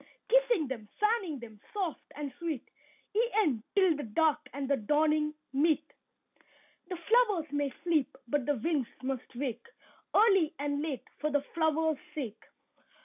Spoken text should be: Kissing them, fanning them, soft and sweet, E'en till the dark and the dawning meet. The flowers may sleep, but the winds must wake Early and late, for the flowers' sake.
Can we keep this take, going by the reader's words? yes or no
yes